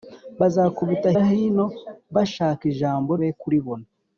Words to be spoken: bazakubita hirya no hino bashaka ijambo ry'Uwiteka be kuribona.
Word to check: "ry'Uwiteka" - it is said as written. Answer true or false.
false